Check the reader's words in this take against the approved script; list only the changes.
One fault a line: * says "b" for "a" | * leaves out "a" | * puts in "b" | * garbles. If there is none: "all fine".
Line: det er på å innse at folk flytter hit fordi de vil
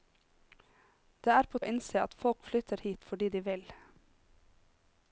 all fine